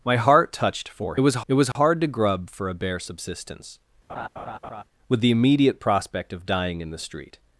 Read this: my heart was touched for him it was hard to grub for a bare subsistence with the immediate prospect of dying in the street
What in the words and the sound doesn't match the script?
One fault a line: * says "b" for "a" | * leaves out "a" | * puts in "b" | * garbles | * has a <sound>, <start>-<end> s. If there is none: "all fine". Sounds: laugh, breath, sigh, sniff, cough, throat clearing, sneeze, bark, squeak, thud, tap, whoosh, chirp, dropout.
* leaves out "was"
* says "was" for "him"
* has a dropout, 1.7-1.8 s
* has a laugh, 4.1-4.8 s